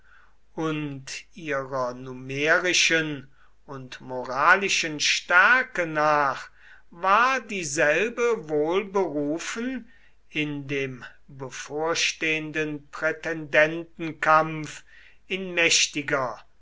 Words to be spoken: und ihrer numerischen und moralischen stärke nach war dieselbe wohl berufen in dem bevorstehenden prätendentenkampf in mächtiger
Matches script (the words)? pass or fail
pass